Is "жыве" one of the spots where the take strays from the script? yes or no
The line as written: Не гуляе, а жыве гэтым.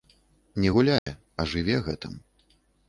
no